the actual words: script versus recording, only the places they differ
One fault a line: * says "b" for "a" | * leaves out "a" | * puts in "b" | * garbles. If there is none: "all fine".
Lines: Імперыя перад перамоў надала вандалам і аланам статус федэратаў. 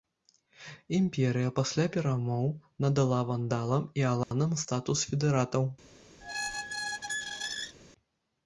* says "пасля" for "перад"